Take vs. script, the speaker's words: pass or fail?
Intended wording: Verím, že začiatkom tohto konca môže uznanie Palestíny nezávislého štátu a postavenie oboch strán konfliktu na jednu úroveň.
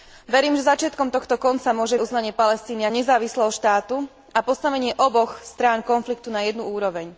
pass